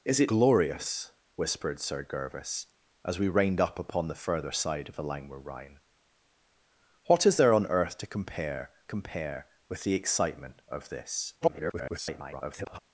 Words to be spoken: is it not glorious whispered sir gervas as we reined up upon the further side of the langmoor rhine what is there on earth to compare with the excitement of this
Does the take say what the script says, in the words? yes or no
no